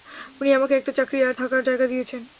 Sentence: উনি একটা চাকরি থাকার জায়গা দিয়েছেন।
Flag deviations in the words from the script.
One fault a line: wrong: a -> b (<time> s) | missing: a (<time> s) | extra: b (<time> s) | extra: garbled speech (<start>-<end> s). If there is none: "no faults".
extra: আমাকে (0.5 s)
extra: আর (1.2 s)